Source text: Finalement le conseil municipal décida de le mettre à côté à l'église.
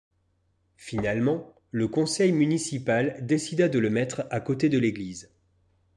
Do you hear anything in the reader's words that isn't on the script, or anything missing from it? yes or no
yes